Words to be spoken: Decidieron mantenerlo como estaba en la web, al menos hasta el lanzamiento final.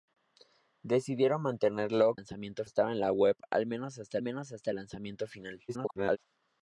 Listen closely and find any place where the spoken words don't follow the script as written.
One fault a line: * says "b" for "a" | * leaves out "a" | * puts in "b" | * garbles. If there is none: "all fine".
* says "lanzamiento" for "como"
* puts in "menos hasta"
* garbles